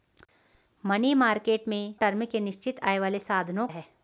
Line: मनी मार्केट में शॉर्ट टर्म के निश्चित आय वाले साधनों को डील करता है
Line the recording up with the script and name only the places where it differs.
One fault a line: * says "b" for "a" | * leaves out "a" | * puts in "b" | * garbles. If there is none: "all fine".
* leaves out "शॉर्ट"
* leaves out "को डील करता"